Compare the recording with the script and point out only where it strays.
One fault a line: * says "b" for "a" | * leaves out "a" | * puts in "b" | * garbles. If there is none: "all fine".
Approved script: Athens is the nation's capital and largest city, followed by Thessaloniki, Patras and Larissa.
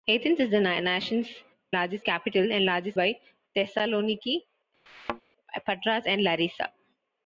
* says "largest" for "nation's"
* leaves out "city followed"